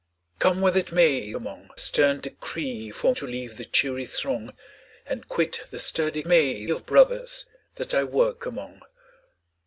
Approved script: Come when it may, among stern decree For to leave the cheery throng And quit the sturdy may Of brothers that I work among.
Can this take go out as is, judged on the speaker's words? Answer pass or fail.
pass